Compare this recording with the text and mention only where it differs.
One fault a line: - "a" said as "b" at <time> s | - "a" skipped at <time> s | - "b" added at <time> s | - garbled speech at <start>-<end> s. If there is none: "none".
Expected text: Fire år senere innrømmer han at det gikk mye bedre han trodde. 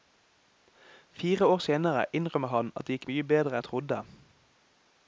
none